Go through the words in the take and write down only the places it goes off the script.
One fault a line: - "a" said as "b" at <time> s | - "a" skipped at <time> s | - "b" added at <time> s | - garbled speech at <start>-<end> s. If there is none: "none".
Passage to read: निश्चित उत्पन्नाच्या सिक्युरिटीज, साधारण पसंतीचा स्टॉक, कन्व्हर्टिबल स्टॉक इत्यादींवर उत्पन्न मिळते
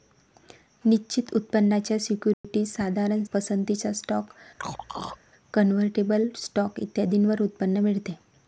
none